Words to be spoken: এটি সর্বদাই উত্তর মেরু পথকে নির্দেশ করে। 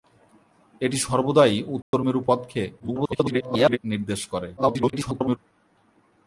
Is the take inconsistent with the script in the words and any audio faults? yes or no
yes